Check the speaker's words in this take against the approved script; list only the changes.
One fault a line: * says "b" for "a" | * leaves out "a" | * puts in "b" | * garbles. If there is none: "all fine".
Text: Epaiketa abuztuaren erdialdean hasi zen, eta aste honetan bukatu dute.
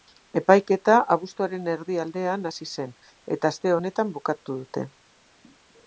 all fine